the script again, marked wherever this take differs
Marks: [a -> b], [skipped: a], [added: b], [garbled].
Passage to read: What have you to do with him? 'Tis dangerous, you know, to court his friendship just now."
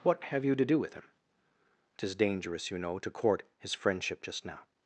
What have you to do with him? 'Tis dangerous, you know, to court his friendship just now."